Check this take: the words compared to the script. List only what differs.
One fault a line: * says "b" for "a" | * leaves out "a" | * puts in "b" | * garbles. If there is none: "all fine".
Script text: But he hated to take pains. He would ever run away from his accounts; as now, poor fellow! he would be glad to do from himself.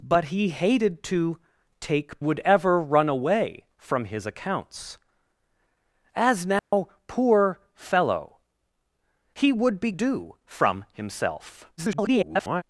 * leaves out "pains He"
* leaves out "glad to"
* garbles